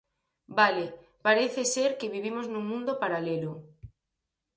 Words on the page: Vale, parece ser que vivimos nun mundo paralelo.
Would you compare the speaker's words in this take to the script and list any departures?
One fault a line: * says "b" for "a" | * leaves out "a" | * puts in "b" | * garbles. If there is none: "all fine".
all fine